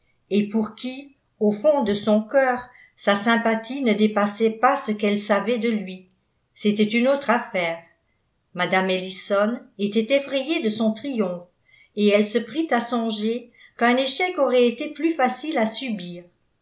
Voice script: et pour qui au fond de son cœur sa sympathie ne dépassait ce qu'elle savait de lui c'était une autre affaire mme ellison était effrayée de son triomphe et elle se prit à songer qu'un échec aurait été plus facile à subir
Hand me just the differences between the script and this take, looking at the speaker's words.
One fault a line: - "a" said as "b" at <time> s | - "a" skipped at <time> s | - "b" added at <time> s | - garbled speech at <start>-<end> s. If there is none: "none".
- "pas" added at 4.6 s